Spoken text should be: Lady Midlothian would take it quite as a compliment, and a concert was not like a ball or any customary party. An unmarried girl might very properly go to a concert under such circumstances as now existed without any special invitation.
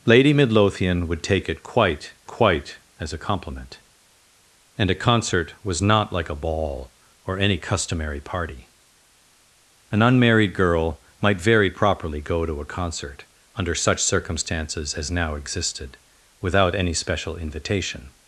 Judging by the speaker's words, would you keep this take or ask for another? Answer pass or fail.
fail